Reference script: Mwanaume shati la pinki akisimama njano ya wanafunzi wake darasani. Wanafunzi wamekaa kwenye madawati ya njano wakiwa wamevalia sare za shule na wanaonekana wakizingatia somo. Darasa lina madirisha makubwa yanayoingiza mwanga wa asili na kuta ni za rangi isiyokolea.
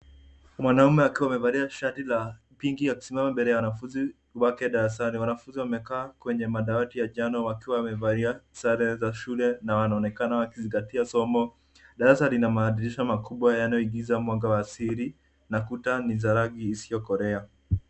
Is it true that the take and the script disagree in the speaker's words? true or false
true